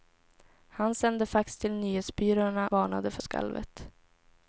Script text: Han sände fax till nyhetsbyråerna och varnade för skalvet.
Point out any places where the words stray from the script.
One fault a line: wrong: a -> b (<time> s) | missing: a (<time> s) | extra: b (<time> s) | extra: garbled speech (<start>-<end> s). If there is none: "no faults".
missing: och (2.7 s)